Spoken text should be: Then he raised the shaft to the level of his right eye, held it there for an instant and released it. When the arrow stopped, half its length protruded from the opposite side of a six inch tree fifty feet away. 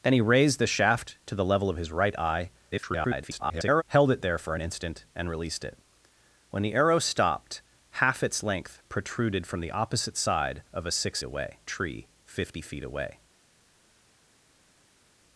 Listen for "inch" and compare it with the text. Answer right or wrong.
wrong